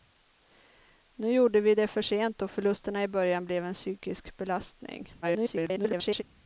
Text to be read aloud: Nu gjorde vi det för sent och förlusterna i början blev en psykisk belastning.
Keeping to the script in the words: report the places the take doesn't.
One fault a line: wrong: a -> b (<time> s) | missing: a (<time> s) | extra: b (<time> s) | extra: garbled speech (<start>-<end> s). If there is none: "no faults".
extra: garbled speech (5.2-6.2 s)